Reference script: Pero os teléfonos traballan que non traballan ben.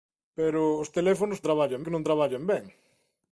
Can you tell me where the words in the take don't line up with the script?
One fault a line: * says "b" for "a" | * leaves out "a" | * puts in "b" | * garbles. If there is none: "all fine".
all fine